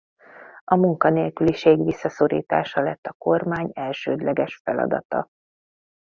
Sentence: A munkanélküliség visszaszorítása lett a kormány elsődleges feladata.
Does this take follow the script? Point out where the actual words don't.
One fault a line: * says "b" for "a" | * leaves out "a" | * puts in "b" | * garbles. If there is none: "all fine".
all fine